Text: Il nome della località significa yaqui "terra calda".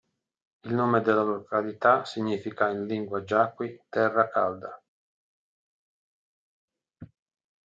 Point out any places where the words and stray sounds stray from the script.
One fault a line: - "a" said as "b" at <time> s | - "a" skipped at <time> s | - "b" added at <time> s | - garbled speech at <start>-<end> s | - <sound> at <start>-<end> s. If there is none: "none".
- "in lingua" added at 2.7 s